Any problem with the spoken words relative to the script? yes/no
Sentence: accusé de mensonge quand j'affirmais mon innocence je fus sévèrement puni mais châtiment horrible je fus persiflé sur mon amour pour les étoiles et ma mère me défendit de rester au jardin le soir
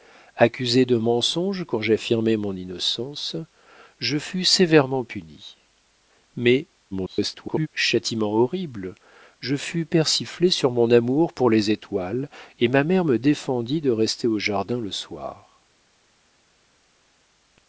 yes